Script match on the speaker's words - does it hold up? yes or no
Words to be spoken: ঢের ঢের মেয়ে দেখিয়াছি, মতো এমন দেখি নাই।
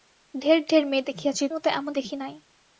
yes